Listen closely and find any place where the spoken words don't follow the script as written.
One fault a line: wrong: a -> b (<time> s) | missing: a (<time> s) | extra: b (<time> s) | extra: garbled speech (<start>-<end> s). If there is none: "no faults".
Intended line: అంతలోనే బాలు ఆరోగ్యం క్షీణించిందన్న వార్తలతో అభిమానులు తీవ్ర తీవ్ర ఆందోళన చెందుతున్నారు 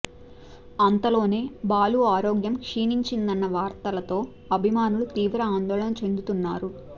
missing: తీవ్ర (5.4 s)